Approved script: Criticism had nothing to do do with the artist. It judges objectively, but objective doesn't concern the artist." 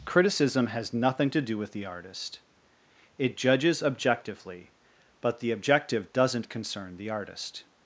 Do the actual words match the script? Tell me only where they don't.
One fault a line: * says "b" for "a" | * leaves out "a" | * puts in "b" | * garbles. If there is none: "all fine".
* says "has" for "had"
* leaves out "do"
* puts in "the"